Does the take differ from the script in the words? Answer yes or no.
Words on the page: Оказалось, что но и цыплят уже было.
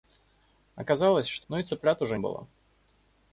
no